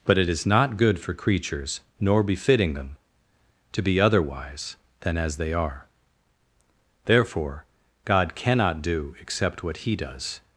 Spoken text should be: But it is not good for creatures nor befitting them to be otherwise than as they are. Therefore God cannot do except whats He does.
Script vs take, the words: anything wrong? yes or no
yes